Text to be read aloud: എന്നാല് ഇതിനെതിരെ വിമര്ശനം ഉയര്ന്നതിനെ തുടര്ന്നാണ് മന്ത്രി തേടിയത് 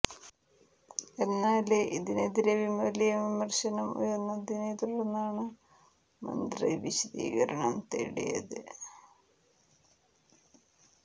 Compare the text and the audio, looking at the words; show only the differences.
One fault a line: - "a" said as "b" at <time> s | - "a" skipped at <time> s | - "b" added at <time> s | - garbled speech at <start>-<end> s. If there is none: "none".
- "വലിയ" added at 2.8 s
- "വിശദീകരണം" added at 6.8 s